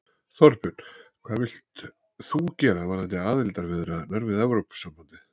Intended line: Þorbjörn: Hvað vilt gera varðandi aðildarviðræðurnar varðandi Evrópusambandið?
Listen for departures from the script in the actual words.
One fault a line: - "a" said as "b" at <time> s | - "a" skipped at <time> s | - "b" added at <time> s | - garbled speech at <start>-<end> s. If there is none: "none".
- "þú" added at 2.3 s
- "varðandi" said as "við" at 4.3 s